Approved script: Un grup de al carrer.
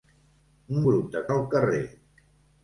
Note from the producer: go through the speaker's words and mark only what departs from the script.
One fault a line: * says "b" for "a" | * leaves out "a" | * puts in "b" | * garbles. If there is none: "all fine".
all fine